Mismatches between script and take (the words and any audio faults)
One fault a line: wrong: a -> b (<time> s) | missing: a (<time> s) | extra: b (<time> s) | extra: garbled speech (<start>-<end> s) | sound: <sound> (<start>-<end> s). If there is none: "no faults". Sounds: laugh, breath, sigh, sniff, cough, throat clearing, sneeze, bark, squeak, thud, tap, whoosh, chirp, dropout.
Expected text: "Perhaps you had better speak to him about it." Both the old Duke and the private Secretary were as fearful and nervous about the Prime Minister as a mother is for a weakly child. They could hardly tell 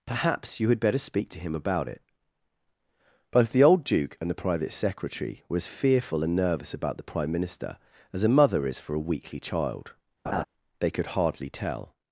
sound: laugh (10.3-10.4 s)